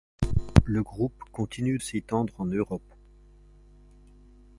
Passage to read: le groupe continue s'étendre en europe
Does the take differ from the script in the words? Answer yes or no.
no